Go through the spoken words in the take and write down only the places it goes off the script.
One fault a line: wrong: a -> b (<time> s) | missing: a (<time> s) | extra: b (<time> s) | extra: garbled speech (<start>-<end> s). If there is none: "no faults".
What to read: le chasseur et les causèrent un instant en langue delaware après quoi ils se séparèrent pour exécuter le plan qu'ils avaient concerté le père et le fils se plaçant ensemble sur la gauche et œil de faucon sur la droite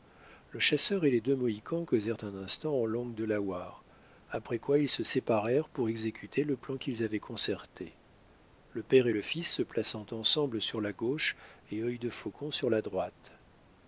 extra: deux mohicans (1.2 s)